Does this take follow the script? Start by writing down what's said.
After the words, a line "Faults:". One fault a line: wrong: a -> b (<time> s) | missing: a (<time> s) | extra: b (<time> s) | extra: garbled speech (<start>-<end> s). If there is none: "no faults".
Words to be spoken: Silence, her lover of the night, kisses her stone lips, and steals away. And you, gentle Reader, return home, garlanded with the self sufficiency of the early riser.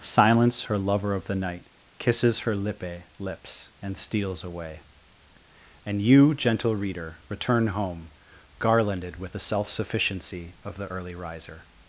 Silence, her lover of the night, kisses her lippe lips, and steals away. And you, gentle Reader, return home, garlanded with the self sufficiency of the early riser.
Faults:
wrong: stone -> lippe (2.5 s)